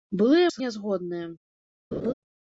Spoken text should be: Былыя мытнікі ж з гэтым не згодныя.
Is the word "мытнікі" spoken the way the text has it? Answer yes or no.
no